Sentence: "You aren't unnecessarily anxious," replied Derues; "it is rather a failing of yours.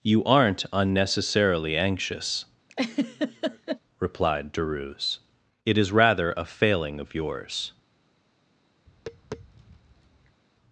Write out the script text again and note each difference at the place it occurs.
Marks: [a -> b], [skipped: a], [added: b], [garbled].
"You aren't unnecessarily anxious," replied Derues; "it is rather a failing of yours.